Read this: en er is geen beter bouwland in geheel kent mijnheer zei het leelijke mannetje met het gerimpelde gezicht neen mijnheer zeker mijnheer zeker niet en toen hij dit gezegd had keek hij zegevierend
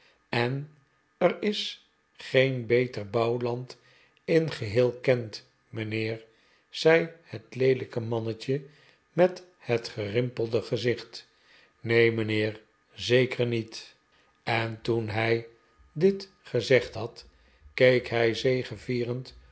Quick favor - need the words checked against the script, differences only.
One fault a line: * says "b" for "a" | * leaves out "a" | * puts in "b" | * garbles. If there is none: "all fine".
* leaves out "mijnheer zeker"